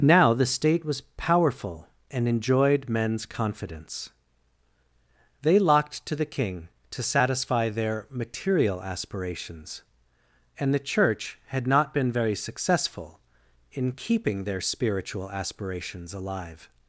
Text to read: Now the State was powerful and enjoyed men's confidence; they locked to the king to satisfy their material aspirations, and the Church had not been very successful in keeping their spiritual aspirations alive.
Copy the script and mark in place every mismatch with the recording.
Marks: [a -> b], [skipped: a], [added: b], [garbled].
Now the State was powerful and enjoyed men's confidence; they locked to the king to satisfy their material aspirations, and the Church had not been very successful in keeping their spiritual aspirations alive.